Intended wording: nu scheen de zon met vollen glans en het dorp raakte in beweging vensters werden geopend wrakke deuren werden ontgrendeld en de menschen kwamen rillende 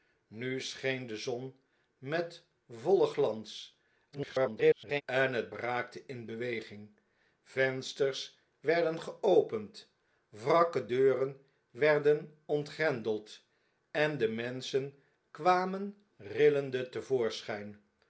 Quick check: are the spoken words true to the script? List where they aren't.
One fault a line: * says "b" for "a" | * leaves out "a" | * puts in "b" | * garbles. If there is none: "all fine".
* garbles
* leaves out "dorp"